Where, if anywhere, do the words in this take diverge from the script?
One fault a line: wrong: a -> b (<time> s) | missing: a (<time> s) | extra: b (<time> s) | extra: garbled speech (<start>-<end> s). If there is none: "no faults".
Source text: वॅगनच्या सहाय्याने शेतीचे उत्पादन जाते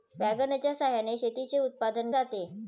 no faults